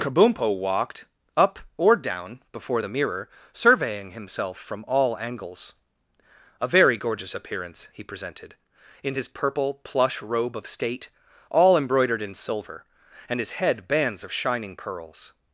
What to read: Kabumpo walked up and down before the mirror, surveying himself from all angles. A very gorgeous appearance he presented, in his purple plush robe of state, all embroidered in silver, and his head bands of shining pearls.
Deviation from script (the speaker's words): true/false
true